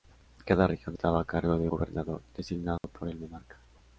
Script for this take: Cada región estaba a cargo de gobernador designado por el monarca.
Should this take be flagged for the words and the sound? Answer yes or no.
yes